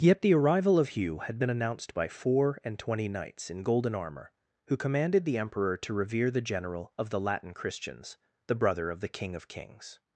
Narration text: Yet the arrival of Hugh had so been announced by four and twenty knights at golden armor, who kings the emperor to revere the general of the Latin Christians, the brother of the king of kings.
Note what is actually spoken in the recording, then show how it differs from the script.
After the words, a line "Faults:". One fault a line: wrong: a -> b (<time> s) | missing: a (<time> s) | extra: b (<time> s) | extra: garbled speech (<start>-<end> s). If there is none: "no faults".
Yet the arrival of Hugh had been announced by four and twenty knights in golden armor, who commanded the emperor to revere the general of the Latin Christians, the brother of the king of kings.
Faults:
missing: so (1.4 s)
wrong: at -> in (3.5 s)
wrong: kings -> commanded (4.8 s)